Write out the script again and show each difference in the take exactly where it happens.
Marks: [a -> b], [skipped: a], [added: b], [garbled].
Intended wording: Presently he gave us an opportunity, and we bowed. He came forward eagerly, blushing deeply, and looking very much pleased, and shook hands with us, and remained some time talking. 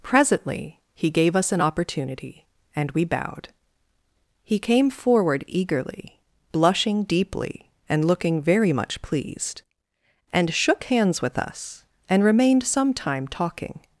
Presently he gave us an opportunity, and we bowed. He came forward eagerly, blushing deeply, and looking very much pleased, and shook hands with us, and remained some time talking.